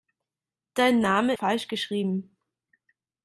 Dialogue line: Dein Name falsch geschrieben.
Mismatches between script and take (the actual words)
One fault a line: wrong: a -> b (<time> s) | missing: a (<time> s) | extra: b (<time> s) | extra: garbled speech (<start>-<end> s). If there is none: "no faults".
no faults